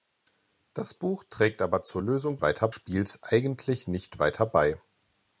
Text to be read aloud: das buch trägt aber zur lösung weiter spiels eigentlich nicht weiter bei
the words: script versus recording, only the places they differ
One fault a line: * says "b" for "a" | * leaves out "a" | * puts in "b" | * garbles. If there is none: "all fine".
all fine